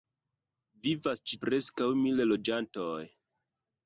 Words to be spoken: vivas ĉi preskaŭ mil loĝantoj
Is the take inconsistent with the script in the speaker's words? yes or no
no